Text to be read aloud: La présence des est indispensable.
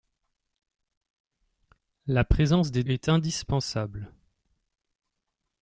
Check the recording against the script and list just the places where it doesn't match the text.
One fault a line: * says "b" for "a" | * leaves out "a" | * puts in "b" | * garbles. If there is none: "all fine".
all fine